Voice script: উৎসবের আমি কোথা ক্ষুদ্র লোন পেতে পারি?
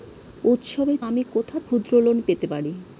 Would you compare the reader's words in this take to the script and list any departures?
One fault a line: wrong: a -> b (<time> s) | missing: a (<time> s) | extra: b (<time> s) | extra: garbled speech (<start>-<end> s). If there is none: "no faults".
no faults